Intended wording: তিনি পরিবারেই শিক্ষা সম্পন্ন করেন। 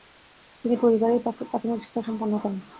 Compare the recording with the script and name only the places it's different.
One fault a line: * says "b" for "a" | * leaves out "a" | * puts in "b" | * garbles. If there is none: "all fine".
* puts in "প্রাথমিক"